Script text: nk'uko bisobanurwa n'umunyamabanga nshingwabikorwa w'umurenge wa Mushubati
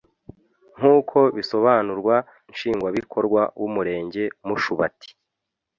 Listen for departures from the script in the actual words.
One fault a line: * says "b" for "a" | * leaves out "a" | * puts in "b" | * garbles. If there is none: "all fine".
* leaves out "n'umunyamabanga"
* leaves out "wa"